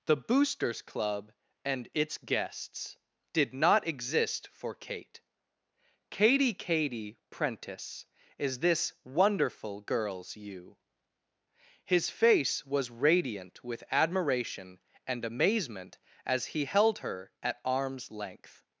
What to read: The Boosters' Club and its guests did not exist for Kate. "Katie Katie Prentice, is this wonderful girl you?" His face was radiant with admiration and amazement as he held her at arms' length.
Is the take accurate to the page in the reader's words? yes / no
no